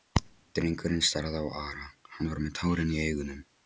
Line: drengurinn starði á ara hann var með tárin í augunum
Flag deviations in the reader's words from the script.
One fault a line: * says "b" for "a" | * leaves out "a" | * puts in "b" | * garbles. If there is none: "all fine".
all fine